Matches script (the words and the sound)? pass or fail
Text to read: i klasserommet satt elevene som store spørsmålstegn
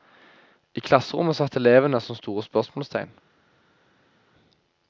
pass